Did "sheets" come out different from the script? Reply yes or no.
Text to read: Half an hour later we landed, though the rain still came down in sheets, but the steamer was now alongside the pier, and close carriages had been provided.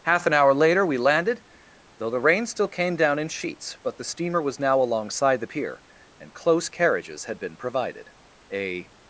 no